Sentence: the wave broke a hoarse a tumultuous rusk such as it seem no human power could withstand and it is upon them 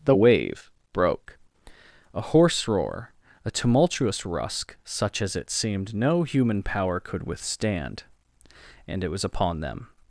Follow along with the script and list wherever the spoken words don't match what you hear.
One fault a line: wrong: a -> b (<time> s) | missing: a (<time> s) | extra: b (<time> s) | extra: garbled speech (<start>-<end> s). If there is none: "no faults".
extra: roar (2.7 s)
wrong: seem -> seemed (5.5 s)
wrong: is -> was (9.1 s)